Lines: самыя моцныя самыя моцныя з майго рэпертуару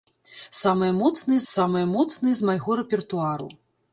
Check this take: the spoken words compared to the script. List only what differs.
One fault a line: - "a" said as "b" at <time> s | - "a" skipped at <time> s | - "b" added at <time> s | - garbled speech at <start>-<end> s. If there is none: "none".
none